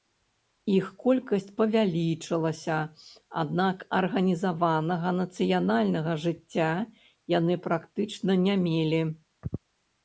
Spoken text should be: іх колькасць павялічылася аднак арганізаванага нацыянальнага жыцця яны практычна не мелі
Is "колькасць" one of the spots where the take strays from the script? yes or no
no